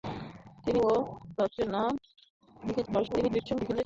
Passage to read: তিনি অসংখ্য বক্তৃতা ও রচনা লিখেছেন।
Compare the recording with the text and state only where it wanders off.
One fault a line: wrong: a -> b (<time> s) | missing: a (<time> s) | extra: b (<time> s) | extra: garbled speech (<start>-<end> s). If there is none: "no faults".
missing: অসংখ্য বক্তৃতা (0.8 s)
extra: garbled speech (2.9-3.9 s)